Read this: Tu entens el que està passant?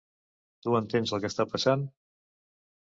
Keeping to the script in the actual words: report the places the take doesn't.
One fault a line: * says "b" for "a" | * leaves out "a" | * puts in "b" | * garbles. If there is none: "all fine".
all fine